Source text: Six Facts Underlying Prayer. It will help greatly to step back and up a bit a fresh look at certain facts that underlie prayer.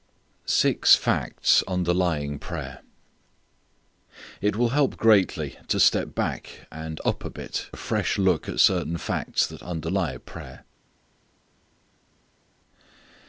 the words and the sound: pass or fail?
pass